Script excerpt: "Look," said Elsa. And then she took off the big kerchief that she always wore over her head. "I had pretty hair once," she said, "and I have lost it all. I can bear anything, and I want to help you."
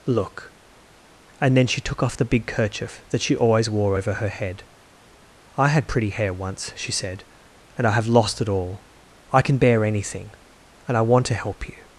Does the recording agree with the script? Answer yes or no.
no